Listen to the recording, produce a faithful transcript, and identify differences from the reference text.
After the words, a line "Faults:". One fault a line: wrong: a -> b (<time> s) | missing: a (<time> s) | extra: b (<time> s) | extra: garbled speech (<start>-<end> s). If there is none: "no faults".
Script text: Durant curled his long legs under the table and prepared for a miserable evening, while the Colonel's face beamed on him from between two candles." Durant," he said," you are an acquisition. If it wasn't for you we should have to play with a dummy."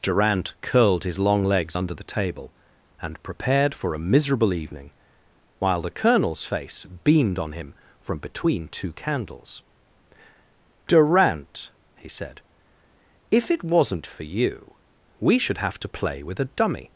Durant curled his long legs under the table and prepared for a miserable evening, while the Colonel's face beamed on him from between two candles." Durant," he said,". If it wasn't for you we should have to play with a dummy."
Faults:
missing: you are an acquisition (12.4 s)